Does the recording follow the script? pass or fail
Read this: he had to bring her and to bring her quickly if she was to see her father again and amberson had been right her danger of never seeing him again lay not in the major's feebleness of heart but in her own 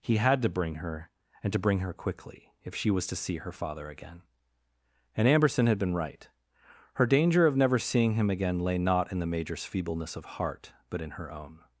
pass